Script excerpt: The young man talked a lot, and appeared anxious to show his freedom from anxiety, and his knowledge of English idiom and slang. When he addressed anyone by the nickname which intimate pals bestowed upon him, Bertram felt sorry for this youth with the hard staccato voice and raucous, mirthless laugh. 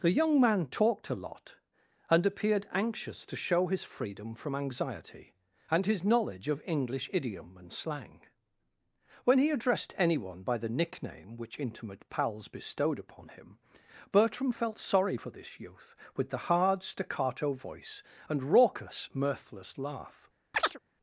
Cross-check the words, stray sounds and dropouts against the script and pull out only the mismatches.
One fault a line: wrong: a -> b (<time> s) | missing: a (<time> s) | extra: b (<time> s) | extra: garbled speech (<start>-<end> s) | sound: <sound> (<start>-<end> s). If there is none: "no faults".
sound: chirp (20.5-20.8 s)